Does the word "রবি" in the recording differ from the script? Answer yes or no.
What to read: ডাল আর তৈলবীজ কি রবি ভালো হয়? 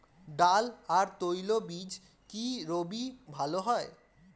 no